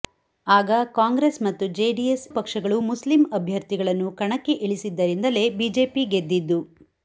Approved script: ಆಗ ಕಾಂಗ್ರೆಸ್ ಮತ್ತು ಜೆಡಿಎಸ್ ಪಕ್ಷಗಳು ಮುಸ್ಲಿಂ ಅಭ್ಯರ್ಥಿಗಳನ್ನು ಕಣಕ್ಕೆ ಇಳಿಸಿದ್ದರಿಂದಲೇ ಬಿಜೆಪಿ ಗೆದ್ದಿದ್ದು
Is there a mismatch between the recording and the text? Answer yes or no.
no